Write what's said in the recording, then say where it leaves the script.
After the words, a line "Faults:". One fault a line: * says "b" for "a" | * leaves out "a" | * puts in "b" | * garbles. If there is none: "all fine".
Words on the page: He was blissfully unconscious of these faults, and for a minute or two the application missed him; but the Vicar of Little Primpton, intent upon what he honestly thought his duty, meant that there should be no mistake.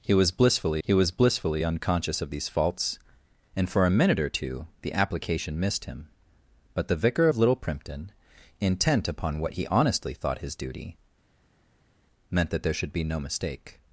He was blissfully he was blissfully unconscious of these faults, and for a minute or two the application missed him; but the Vicar of Little Primpton, intent upon what he honestly thought his duty, meant that there should be no mistake.
Faults:
* puts in "he was blissfully"